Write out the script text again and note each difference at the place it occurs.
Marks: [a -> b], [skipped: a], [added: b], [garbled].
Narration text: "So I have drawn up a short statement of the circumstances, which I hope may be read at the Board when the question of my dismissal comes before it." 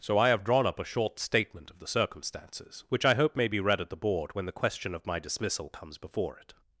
"So I have drawn up a short statement of the circumstances, which I hope may be read at the Board when the question of my dismissal comes before it."